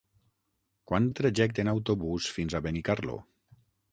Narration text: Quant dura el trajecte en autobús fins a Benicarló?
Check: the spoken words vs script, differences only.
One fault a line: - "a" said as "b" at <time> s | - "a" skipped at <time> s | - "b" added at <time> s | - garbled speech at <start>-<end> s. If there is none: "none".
- "dura" skipped at 1.1 s